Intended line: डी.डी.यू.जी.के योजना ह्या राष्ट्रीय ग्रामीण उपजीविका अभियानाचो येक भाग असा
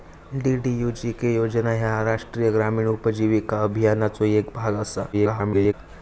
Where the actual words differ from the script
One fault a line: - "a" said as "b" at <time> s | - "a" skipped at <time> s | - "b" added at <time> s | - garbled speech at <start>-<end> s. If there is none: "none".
- garbled speech at 5.1-5.7 s